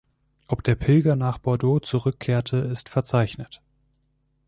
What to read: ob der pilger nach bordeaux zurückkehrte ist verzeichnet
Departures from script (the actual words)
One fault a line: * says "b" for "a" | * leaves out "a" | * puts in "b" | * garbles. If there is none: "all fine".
all fine